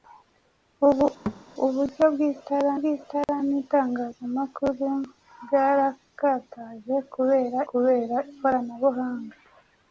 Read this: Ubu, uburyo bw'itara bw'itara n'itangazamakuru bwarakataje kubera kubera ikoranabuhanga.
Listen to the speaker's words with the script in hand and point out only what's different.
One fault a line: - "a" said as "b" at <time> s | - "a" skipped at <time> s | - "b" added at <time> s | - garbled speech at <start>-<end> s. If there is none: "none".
none